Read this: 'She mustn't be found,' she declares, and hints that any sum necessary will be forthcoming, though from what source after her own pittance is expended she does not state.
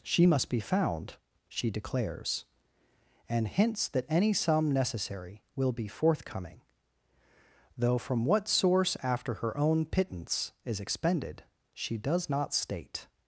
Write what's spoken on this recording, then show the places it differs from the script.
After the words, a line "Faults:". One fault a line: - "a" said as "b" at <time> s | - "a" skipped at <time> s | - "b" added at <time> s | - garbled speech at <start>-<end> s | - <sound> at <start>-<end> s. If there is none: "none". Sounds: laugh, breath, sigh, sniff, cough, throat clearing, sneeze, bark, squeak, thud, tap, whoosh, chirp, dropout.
'She must be found,' she declares, and hints that any sum necessary will be forthcoming, though from what source after her own pittance is expended she does not state.
Faults:
- "mustn't" said as "must" at 0.2 s